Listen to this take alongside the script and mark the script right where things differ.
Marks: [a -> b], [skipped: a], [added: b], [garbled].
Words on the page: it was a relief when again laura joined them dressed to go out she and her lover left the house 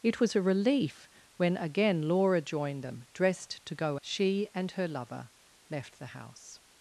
it was a relief when again laura joined them dressed to go [skipped: out] she and her lover left the house